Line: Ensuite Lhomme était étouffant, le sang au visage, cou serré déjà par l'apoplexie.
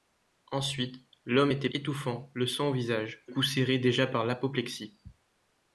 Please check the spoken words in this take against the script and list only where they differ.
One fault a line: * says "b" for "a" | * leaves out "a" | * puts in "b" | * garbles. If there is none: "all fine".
all fine